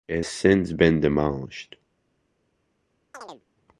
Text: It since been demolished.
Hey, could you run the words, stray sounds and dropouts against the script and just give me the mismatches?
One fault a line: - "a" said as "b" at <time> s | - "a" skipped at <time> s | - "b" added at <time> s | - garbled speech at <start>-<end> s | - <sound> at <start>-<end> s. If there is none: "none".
- chirp at 3.1-3.4 s